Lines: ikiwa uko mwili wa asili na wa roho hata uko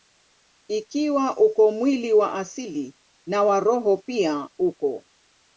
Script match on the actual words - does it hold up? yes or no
no